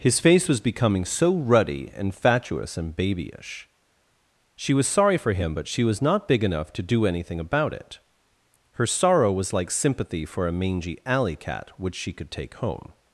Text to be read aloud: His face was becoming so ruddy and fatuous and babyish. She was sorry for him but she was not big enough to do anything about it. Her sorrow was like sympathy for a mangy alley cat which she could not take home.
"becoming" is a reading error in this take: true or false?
false